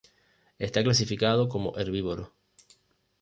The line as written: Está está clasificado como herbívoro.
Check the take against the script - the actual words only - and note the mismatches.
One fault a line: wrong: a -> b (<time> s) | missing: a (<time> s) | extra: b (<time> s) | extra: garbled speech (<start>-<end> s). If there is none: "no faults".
missing: está (0.8 s)